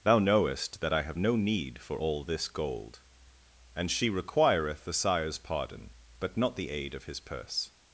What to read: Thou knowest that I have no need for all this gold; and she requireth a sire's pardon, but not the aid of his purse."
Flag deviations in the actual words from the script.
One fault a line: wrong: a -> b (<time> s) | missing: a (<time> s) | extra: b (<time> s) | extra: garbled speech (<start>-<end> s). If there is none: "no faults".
wrong: a -> the (4.8 s)